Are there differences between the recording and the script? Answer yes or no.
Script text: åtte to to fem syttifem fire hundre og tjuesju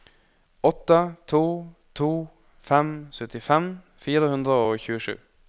no